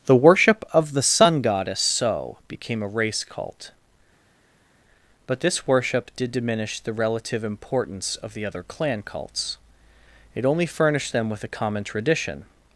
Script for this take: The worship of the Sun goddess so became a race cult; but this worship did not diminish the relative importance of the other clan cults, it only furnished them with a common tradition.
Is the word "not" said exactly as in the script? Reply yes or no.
no